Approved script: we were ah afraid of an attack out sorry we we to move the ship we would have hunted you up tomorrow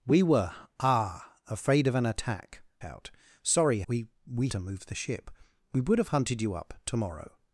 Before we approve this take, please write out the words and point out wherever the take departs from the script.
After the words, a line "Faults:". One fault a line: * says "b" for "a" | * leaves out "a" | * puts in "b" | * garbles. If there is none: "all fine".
we were ah afraid of an attack out sorry we we to move the ship we would have hunted you up tomorrow
Faults:
all fine